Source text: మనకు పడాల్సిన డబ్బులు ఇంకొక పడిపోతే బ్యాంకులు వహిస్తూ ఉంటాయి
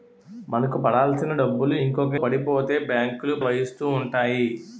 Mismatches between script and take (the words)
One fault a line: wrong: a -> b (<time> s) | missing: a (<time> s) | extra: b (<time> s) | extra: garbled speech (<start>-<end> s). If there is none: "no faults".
no faults